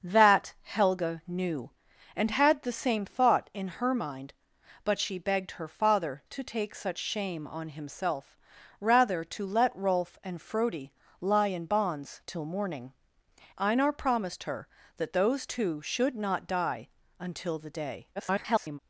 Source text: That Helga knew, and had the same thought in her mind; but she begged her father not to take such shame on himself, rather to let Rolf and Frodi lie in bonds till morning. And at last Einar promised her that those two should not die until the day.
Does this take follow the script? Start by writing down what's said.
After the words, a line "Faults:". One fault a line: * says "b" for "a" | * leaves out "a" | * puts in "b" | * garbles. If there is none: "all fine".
That Helga knew, and had the same thought in her mind; but she begged her father to take such shame on himself, rather to let Rolf and Frodi lie in bonds till morning. Einar promised her that those two should not die until the day. [garbled]
Faults:
* leaves out "not"
* leaves out "And at last"
* garbles